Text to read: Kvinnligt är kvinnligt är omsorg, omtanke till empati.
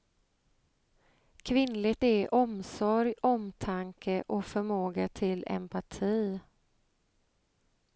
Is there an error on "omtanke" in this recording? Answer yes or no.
yes